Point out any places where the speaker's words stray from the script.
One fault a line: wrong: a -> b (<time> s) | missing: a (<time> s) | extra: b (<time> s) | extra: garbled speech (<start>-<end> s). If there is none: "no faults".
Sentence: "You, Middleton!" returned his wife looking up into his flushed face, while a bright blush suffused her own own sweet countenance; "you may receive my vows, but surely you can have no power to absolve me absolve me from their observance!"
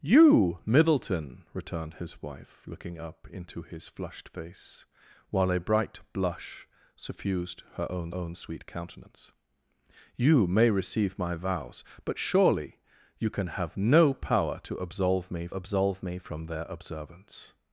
no faults